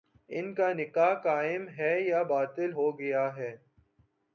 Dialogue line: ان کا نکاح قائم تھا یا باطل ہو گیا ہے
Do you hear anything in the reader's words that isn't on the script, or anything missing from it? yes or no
yes